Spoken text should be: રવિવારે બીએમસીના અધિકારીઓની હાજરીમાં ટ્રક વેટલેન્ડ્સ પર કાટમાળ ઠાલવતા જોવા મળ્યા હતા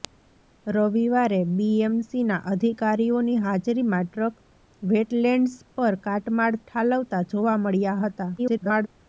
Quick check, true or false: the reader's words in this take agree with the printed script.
false